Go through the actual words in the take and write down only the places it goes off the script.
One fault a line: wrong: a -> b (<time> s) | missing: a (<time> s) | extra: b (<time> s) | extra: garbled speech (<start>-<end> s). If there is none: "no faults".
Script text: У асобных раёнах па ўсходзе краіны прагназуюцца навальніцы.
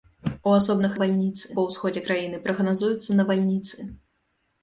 wrong: раёнах -> навальніцы (0.9 s)